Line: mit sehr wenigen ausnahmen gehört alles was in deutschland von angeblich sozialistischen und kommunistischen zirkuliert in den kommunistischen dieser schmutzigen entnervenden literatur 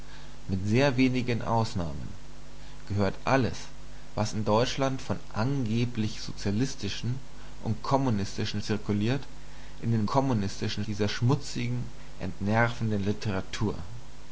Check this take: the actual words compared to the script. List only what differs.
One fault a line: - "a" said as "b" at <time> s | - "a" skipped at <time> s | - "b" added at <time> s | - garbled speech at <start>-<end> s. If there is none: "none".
none